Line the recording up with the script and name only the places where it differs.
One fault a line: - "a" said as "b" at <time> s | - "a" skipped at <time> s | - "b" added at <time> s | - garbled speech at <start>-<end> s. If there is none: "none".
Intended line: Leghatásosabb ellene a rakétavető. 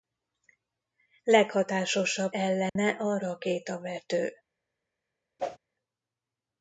none